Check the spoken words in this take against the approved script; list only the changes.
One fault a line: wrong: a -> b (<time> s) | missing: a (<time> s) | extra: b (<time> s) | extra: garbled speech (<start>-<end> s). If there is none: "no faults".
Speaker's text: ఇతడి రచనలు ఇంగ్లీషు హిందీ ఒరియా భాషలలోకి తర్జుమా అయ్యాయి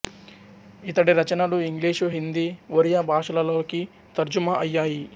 no faults